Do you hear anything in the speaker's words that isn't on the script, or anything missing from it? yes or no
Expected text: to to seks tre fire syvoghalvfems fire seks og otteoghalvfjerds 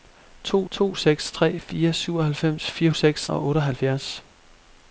no